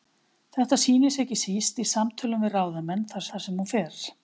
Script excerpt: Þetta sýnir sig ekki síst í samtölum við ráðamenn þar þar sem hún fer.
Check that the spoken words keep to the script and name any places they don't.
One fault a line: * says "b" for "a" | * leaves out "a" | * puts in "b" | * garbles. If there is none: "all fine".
all fine